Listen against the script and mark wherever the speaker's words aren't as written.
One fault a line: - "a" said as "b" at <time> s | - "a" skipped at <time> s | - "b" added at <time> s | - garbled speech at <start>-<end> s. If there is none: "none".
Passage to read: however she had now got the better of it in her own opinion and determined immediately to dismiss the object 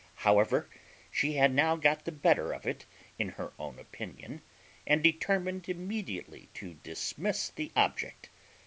none